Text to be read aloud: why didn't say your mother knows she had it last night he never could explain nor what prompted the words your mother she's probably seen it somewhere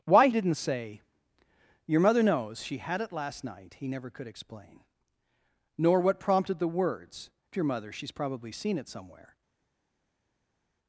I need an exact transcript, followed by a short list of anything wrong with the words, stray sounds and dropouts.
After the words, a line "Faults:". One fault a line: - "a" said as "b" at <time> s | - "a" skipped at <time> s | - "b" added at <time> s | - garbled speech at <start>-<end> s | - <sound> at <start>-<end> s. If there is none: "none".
why didn't say your mother knows she had it last night he never could explain nor what prompted the words your mother she's probably seen it somewhere
Faults:
none